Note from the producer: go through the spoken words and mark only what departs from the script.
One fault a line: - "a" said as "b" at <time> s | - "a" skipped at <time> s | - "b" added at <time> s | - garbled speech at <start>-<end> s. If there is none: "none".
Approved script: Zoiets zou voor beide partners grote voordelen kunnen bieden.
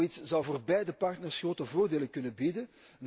none